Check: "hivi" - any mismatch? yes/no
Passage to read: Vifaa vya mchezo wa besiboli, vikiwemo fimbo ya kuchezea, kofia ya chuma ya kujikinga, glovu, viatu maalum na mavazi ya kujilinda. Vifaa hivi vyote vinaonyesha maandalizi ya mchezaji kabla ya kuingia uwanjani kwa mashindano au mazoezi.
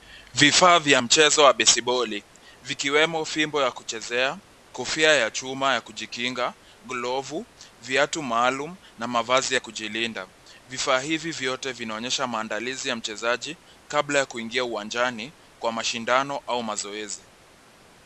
no